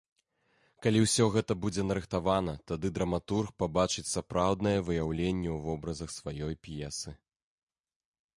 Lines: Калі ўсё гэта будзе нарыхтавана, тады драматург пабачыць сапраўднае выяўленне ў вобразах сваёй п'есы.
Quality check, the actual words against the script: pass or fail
pass